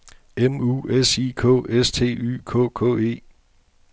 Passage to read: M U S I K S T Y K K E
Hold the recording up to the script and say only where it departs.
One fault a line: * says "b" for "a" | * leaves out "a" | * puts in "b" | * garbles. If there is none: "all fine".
all fine